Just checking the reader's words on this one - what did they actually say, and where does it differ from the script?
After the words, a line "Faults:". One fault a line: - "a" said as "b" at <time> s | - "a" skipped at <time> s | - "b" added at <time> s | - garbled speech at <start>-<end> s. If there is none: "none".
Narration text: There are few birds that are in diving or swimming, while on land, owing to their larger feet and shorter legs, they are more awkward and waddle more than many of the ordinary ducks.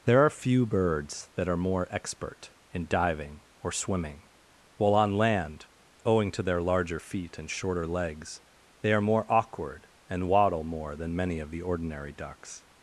There are few birds that are more expert in diving or swimming, while on land, owing to their larger feet and shorter legs, they are more awkward and waddle more than many of the ordinary ducks.
Faults:
- "more expert" added at 1.7 s